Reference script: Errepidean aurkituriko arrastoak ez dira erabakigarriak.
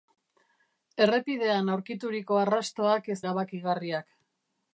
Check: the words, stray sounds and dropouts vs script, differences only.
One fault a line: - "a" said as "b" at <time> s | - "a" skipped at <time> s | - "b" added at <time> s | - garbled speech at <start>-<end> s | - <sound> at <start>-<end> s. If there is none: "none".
- "dira" skipped at 3.2 s